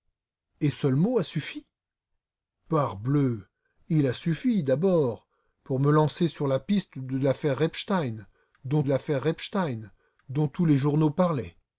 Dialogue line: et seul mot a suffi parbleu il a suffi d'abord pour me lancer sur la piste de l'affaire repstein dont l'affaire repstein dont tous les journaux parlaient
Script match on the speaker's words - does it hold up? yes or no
yes